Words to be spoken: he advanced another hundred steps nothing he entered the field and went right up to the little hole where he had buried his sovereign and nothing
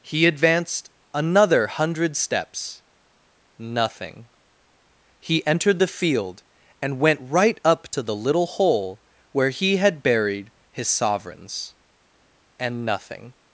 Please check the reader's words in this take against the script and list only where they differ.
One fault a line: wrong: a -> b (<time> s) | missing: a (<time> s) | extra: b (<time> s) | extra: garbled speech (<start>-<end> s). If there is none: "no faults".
wrong: sovereign -> sovereigns (10.9 s)